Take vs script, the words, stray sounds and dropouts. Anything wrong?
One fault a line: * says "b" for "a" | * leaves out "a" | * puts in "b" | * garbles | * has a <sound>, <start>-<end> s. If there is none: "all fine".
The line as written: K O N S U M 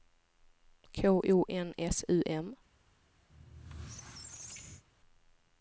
* has a squeak, 3.3-4.8 s